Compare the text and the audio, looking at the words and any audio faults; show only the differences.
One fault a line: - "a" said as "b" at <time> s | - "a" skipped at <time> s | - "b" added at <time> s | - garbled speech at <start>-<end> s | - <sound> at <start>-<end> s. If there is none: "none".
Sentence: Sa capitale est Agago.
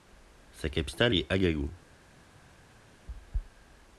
none